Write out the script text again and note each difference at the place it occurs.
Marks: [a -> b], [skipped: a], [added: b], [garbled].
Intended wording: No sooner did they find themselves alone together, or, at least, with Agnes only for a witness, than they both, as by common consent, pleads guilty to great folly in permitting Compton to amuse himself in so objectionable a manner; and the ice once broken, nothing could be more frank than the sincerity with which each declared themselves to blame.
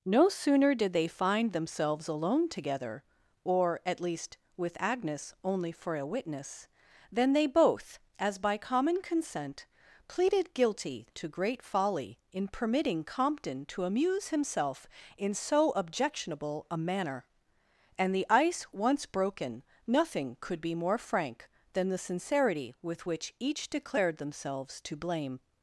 No sooner did they find themselves alone together, or, at least, with Agnes only for a witness, than they both, as by common consent, [pleads -> pleaded] guilty to great folly in permitting Compton to amuse himself in so objectionable a manner; and the ice once broken, nothing could be more frank than the sincerity with which each declared themselves to blame.